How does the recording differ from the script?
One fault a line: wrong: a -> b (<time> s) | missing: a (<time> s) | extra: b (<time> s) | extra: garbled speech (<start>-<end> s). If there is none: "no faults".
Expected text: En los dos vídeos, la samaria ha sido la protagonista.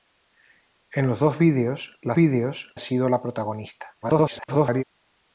wrong: samaria -> vídeos (2.1 s)
extra: garbled speech (4.0-4.8 s)